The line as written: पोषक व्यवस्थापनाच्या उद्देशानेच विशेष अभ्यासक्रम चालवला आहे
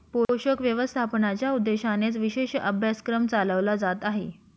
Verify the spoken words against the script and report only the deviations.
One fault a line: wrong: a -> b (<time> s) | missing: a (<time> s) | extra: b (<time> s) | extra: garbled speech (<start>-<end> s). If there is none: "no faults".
extra: जात (3.8 s)